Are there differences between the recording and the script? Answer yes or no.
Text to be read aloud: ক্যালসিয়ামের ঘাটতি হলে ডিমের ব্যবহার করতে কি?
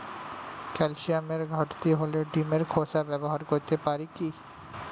yes